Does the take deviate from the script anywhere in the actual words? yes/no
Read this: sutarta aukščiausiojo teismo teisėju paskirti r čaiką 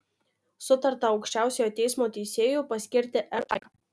no